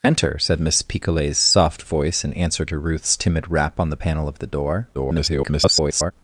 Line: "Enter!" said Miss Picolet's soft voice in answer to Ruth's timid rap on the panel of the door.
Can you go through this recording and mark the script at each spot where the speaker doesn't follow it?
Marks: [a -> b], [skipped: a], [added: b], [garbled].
"Enter!" said Miss Picolet's soft voice in answer to Ruth's timid rap on the panel of the door. [garbled]